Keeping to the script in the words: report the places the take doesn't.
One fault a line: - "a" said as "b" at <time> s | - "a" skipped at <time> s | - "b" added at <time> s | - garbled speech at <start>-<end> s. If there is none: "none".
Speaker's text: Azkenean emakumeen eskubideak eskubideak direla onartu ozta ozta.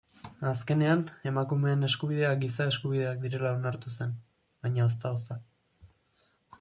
- "giza" added at 2.4 s
- "zen baina" added at 4.0 s